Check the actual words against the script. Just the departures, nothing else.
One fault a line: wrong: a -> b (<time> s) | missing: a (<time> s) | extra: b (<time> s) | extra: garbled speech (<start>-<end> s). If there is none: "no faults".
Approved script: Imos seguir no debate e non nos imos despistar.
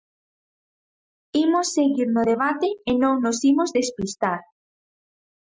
no faults